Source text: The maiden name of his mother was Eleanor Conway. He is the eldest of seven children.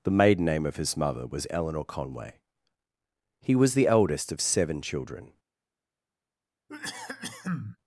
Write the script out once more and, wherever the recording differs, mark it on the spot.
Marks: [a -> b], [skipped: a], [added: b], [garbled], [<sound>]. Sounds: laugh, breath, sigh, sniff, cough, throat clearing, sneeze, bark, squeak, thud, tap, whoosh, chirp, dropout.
The maiden name of his mother was Eleanor Conway. He [is -> was] the eldest of seven children. [cough]